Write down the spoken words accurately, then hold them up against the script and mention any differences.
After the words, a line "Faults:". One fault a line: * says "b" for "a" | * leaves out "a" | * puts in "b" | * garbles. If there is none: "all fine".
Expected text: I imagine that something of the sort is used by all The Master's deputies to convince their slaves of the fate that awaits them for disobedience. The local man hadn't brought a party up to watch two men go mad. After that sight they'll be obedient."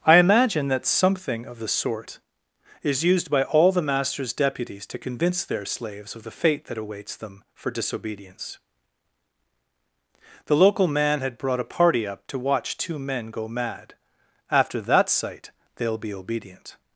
I imagine that something of the sort is used by all The Master's deputies to convince their slaves of the fate that awaits them for disobedience. The local man had brought a party up to watch two men go mad. After that sight they'll be obedient."
Faults:
* says "had" for "hadn't"